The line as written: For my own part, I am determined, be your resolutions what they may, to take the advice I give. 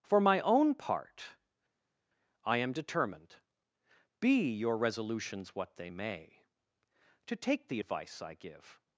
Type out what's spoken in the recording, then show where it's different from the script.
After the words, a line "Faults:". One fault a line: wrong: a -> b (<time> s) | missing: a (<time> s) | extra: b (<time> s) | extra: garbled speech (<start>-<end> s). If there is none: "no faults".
For my own part, I am determined, be your resolutions what they may, to take the advice I give.
Faults:
no faults